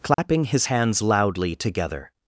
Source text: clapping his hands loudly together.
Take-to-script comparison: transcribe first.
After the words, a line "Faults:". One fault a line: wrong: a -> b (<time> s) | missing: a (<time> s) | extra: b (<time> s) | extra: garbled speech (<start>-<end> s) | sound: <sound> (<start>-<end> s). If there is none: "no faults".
clapping his hands loudly together.
Faults:
sound: dropout (0.1-0.2 s)